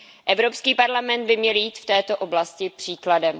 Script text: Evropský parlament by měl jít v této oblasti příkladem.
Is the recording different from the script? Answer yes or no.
no